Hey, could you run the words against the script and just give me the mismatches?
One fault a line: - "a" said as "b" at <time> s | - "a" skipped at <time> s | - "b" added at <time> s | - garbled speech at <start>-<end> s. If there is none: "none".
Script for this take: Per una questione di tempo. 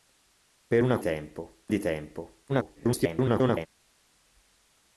- "questione" said as "tempo" at 1.0 s
- garbled speech at 2.5-3.7 s